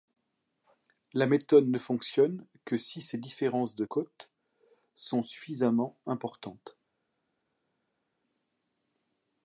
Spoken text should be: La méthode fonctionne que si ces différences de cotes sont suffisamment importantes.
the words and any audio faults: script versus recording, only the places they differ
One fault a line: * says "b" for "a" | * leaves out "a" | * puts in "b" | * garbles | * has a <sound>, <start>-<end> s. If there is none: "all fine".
* puts in "ne"